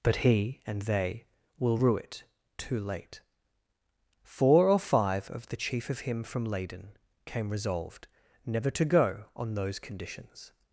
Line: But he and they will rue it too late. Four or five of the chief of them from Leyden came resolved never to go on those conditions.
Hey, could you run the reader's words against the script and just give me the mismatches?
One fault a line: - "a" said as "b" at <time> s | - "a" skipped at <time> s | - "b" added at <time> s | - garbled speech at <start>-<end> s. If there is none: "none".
- "them" said as "him" at 6.0 s